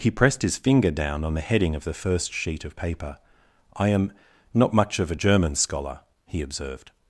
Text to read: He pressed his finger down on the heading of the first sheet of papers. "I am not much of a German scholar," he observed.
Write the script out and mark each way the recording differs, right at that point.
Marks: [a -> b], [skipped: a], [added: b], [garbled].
He pressed his finger down on the heading of the first sheet of [papers. -> paper] "I am not much of a German scholar," he observed.